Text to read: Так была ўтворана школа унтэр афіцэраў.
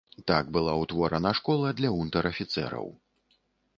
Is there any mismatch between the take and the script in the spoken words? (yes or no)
yes